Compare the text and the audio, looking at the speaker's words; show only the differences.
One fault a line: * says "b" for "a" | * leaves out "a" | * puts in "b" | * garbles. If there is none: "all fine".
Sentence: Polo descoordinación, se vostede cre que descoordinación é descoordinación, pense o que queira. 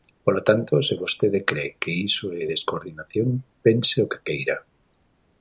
* says "tanto" for "descoordinación"
* says "iso" for "descoordinación"